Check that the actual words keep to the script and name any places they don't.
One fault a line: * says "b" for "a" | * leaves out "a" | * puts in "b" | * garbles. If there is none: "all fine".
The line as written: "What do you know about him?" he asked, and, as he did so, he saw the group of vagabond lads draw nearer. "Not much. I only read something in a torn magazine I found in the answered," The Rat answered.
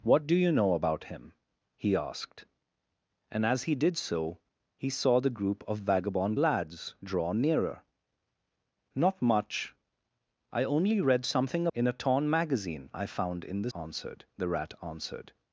all fine